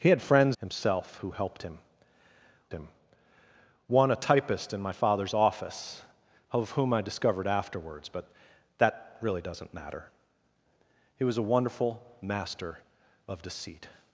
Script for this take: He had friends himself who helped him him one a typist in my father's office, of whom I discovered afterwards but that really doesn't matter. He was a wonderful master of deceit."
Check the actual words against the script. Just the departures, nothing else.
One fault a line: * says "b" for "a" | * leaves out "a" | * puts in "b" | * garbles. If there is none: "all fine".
all fine